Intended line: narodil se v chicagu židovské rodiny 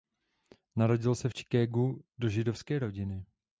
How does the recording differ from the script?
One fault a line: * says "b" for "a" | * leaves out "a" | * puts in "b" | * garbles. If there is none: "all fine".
* puts in "do"